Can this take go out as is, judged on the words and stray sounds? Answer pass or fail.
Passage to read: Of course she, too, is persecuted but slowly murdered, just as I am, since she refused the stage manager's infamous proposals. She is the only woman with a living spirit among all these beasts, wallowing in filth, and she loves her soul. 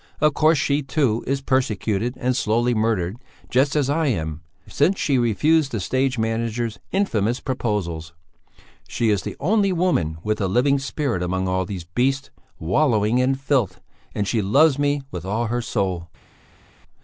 fail